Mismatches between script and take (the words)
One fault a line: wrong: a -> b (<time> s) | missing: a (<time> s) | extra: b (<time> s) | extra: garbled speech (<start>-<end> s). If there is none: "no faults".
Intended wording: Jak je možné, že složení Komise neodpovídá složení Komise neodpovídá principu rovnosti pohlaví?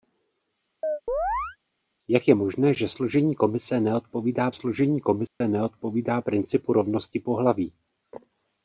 no faults